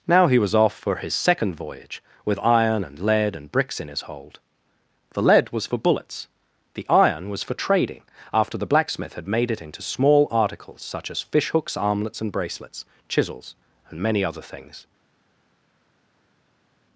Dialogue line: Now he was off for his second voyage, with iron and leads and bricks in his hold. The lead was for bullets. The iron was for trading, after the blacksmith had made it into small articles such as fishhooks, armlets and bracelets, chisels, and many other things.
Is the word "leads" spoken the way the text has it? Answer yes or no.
no